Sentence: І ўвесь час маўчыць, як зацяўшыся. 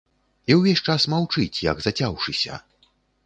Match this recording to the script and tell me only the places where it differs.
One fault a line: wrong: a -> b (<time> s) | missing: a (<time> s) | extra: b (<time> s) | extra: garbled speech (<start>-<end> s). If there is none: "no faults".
no faults